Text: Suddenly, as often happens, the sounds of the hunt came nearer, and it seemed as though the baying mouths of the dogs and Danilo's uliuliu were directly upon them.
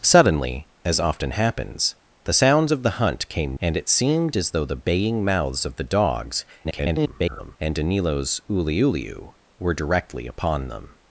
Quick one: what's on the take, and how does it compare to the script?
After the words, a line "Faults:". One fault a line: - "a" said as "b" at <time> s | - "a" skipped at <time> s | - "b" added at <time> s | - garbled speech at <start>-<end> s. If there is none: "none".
Suddenly, as often happens, the sounds of the hunt came and it seemed as though the baying mouths of the dogs [garbled] and Danilo's uliuliu were directly upon them.
Faults:
- "nearer" skipped at 3.6 s
- garbled speech at 6.6-7.6 s